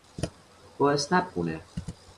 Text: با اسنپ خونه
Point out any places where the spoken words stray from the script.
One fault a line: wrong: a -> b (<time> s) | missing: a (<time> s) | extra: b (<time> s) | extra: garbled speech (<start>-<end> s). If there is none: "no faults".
no faults